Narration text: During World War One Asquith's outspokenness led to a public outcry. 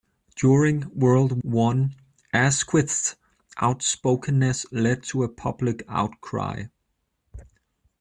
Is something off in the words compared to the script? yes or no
yes